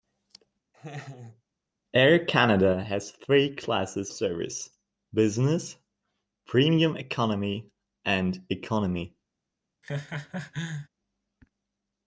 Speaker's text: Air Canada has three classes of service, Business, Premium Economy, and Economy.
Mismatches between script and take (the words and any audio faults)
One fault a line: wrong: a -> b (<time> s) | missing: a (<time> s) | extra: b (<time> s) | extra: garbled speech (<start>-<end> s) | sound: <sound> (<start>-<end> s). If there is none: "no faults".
sound: laugh (0.7-1.4 s)
missing: of (4.1 s)
sound: laugh (9.8-10.9 s)